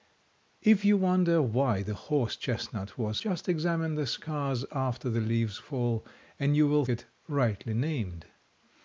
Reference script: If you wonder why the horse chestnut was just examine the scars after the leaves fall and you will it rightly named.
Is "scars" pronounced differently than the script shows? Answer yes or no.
no